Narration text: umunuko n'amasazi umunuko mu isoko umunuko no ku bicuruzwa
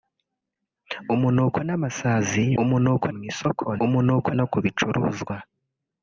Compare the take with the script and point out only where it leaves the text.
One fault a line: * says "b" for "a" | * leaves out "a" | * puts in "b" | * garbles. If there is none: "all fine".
all fine